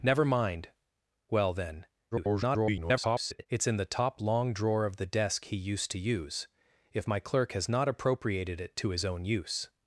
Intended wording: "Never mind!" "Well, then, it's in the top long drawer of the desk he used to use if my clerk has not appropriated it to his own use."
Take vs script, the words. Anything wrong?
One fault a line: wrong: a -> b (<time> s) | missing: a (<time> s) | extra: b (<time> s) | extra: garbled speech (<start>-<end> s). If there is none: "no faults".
extra: garbled speech (2.1-3.5 s)